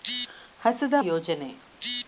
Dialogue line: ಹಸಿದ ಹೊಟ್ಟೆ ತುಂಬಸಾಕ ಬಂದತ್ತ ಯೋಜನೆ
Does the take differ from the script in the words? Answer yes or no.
yes